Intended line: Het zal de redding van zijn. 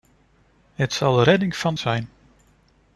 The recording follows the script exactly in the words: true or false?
true